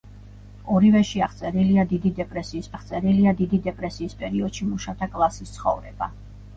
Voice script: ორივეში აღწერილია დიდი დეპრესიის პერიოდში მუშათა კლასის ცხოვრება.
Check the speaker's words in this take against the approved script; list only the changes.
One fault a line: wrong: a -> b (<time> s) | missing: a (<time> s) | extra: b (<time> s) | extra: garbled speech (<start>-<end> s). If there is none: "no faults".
extra: აღწერილია დიდი დეპრესიის (2.7 s)